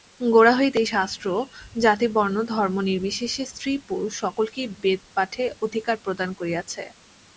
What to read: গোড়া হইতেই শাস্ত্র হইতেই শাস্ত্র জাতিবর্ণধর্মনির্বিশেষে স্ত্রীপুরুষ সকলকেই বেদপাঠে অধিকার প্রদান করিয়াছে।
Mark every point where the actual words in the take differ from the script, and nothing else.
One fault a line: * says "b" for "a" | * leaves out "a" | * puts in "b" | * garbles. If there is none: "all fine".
* leaves out "হইতেই শাস্ত্র"